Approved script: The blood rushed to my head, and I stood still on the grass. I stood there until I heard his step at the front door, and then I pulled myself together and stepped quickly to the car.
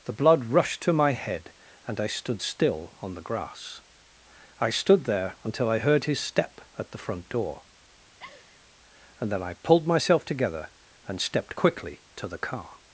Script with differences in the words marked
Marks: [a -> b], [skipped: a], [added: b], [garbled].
The blood rushed to my head, and I stood still on the grass. I stood there until I heard his step at the front door, and then I pulled myself together and stepped quickly to the car.